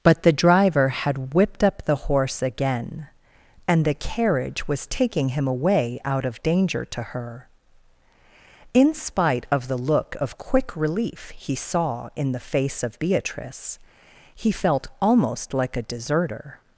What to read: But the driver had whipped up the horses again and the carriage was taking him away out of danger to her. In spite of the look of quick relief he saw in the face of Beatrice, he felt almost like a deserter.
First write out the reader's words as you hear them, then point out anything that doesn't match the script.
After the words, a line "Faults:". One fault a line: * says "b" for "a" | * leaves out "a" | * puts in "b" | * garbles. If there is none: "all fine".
But the driver had whipped up the horse again and the carriage was taking him away out of danger to her. In spite of the look of quick relief he saw in the face of Beatrice, he felt almost like a deserter.
Faults:
* says "horse" for "horses"